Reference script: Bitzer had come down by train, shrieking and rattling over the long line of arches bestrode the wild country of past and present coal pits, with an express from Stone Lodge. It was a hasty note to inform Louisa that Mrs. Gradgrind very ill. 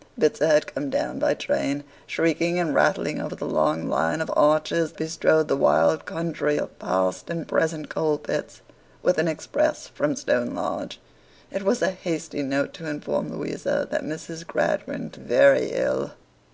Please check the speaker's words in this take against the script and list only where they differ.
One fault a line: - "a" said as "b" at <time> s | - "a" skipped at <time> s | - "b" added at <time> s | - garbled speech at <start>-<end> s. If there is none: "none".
none